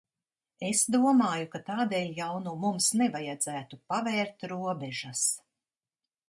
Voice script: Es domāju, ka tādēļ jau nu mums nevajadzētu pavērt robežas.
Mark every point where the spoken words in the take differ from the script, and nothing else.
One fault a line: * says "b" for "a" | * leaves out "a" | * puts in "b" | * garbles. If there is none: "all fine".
all fine